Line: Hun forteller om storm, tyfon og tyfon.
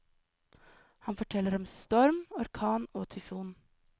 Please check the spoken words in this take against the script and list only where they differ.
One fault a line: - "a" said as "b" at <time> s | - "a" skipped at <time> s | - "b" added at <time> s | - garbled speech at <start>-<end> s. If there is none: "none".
- "Hun" said as "Han" at 1.0 s
- "tyfon" said as "orkan" at 2.3 s